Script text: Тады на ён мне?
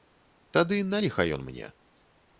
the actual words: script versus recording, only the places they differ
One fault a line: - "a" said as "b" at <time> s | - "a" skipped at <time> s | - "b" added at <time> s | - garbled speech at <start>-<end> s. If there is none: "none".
- "ліха" added at 1.0 s